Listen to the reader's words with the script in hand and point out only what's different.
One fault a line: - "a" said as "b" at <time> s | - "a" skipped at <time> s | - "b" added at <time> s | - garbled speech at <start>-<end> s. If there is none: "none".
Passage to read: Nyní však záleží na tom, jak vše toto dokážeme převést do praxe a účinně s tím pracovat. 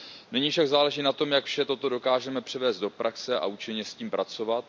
none